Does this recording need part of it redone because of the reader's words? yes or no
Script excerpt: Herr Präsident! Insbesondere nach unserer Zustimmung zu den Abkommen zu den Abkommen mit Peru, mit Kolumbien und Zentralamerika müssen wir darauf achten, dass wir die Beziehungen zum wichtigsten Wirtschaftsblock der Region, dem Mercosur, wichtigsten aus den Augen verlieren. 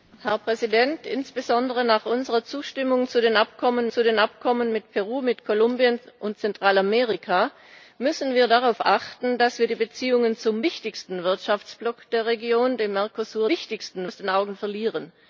no